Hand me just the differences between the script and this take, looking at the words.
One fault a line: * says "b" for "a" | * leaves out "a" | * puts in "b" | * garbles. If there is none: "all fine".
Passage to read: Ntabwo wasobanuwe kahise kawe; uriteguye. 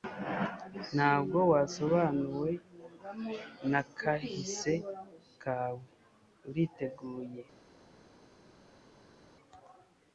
* puts in "na"